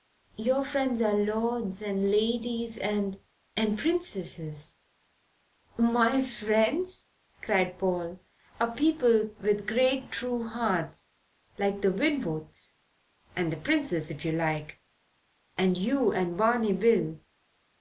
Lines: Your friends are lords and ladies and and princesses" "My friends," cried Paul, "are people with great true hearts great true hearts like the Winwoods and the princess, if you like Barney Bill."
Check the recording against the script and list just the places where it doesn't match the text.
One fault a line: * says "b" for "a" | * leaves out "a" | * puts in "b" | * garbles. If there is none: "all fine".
* leaves out "great true hearts"
* puts in "and you and"